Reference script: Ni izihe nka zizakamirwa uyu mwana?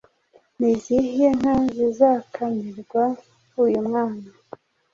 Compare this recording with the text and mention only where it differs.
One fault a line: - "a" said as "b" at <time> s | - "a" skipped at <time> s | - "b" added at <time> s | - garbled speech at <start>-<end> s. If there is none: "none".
none